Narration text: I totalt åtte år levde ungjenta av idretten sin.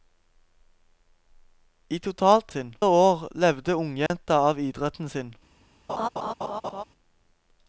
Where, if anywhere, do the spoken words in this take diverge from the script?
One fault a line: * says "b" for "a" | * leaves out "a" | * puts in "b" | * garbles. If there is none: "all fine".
* says "sin" for "åtte"